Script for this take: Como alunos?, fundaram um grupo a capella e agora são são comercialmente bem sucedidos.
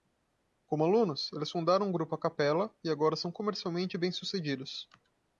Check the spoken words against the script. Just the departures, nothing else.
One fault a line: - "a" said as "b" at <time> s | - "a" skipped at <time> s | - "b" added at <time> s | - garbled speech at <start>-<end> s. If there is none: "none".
- "eles" added at 1.3 s
- "são" skipped at 3.3 s